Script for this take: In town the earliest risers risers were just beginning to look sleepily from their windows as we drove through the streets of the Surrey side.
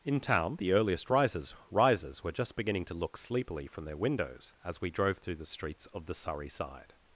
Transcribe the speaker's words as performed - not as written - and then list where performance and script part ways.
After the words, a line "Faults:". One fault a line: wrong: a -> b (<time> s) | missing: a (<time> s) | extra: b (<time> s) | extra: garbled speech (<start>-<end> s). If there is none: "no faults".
In town the earliest risers risers were just beginning to look sleepily from their windows as we drove through the streets of the Surrey side.
Faults:
no faults